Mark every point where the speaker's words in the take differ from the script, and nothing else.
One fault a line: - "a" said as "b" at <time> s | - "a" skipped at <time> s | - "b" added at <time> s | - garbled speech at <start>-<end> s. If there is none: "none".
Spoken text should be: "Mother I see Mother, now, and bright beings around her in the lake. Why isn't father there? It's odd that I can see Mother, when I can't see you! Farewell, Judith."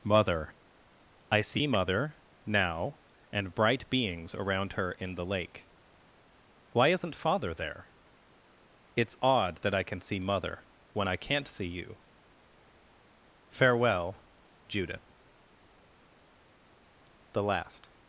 - "The last" added at 17.3 s